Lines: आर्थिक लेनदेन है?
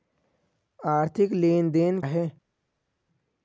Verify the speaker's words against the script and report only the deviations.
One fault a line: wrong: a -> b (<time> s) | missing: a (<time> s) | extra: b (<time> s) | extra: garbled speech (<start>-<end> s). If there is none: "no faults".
no faults